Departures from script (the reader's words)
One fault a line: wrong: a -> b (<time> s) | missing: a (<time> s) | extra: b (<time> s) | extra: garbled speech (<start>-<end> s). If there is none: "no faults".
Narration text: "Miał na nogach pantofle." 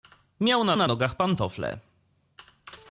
extra: na (0.7 s)